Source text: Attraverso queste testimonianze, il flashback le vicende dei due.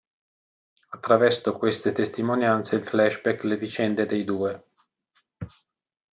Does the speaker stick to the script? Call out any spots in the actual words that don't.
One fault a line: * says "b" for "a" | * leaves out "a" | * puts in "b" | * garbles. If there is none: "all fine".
all fine